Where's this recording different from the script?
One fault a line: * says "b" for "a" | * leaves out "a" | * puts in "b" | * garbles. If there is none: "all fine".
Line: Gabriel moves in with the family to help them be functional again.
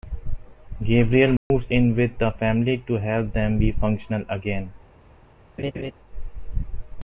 all fine